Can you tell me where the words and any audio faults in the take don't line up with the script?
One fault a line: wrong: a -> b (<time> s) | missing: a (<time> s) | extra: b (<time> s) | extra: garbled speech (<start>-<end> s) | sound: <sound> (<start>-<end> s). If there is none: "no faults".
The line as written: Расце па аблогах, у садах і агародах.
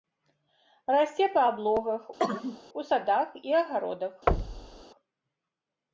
sound: cough (2.2-2.6 s)
sound: thud (4.3-4.8 s)